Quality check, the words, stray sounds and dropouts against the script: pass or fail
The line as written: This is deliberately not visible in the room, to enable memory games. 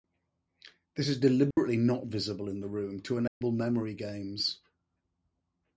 fail